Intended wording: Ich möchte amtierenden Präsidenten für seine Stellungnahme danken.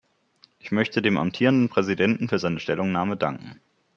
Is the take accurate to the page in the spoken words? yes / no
no